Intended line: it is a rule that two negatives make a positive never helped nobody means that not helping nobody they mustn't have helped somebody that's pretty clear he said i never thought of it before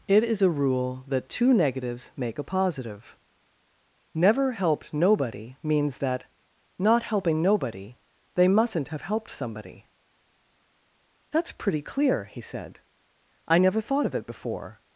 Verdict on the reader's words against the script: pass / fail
pass